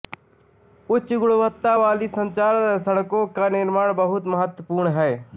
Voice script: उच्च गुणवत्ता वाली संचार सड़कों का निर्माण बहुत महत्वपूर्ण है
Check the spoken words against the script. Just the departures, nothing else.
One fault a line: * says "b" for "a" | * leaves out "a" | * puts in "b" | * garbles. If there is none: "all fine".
all fine